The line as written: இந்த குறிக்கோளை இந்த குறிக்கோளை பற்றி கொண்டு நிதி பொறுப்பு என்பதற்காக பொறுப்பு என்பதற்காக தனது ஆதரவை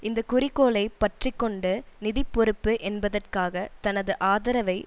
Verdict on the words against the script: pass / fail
fail